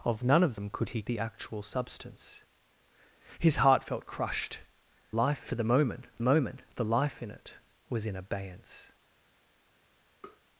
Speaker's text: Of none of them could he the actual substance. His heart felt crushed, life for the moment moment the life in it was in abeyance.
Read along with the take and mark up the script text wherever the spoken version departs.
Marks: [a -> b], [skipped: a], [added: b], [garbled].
Of none of them could he the actual substance. His heart felt crushed, life for the moment moment the life in it was in abeyance.